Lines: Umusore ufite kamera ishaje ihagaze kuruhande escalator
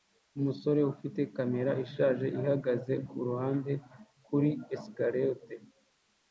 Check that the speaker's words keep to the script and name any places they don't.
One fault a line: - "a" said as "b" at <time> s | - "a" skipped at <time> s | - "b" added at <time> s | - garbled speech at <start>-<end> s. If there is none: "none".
- "kuri" added at 4.3 s